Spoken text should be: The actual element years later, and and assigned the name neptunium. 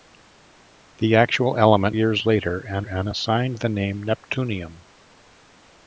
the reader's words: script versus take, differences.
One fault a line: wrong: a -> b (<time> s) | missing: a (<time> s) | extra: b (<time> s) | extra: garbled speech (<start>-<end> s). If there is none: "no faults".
no faults